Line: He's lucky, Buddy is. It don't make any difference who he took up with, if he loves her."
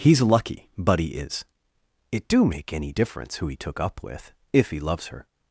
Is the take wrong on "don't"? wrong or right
wrong